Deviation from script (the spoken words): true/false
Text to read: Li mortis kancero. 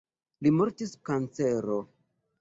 false